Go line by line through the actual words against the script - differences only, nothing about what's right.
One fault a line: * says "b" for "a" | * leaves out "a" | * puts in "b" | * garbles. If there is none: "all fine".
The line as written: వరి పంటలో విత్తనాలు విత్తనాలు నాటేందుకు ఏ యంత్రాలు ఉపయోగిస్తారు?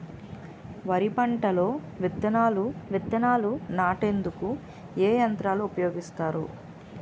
all fine